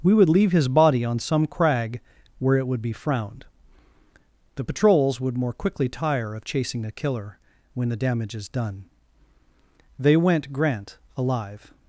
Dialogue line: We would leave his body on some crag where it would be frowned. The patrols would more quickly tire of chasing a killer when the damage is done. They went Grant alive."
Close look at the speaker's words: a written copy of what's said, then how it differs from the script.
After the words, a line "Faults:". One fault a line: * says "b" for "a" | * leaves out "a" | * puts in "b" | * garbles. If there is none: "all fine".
We would leave his body on some crag where it would be frowned. The patrols would more quickly tire of chasing a killer when the damage is done. They went Grant alive."
Faults:
all fine